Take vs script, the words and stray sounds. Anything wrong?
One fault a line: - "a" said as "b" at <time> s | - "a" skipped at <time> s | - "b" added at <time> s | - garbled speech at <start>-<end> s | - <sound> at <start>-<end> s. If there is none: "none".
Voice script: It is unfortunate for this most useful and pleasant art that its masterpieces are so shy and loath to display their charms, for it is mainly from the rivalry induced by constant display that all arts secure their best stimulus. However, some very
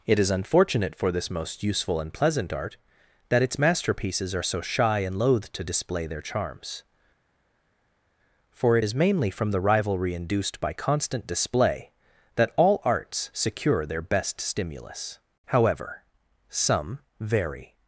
none